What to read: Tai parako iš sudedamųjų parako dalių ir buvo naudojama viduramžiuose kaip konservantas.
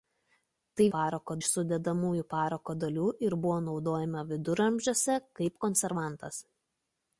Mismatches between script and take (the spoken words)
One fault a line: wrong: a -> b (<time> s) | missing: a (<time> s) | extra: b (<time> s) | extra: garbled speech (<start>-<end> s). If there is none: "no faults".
no faults